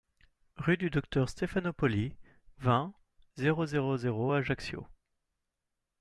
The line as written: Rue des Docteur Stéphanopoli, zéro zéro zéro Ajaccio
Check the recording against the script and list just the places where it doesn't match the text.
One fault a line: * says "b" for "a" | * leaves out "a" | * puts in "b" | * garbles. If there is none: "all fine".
* says "du" for "des"
* puts in "vingt"